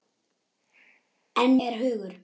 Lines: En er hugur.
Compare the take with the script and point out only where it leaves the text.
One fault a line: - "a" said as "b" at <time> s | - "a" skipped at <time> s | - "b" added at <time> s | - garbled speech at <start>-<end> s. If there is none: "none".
none